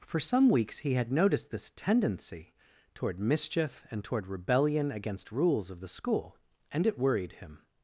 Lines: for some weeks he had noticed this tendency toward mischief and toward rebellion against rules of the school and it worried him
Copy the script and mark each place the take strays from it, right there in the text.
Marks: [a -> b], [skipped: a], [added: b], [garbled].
for some weeks he had noticed this tendency toward mischief and toward rebellion against rules of the school and it worried him